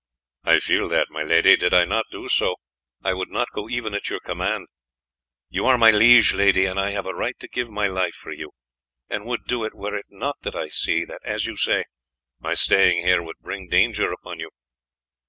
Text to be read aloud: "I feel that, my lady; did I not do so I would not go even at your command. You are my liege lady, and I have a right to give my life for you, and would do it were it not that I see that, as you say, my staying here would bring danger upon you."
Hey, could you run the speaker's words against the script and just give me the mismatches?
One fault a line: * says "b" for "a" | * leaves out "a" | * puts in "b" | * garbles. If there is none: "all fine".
all fine